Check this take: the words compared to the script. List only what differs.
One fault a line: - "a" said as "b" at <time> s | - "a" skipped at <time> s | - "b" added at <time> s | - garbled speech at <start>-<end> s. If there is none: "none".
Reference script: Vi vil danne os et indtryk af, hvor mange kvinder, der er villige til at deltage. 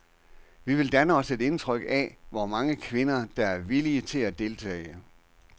none